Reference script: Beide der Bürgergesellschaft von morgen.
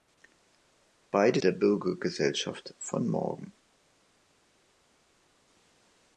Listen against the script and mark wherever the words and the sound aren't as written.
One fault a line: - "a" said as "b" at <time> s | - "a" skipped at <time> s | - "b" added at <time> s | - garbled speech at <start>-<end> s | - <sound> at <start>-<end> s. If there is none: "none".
none